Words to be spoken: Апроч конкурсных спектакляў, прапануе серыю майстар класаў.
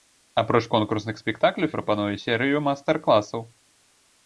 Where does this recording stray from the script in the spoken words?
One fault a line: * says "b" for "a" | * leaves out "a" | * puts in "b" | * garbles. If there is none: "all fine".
all fine